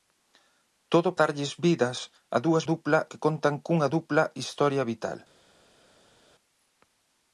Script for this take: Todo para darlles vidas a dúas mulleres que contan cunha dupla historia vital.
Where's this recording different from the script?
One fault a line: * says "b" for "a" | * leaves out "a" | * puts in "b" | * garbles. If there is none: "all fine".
* leaves out "para"
* says "dupla" for "mulleres"